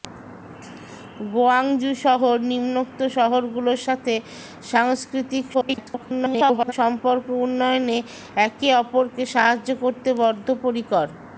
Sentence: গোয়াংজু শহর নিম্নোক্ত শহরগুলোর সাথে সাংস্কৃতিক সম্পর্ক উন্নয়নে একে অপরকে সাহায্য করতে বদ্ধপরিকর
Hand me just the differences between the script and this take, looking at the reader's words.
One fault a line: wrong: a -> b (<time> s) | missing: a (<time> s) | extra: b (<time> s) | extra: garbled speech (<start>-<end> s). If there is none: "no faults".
extra: garbled speech (5.5-6.7 s)